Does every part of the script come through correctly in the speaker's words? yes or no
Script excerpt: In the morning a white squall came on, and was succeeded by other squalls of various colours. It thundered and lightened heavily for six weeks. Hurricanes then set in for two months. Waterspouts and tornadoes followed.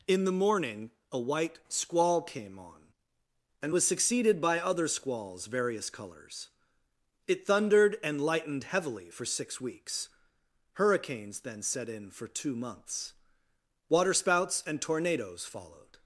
no